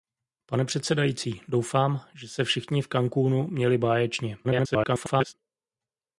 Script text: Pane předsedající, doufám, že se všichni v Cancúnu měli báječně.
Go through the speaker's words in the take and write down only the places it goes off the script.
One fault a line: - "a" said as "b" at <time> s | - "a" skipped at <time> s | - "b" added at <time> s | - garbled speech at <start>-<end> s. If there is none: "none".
- garbled speech at 4.4-5.3 s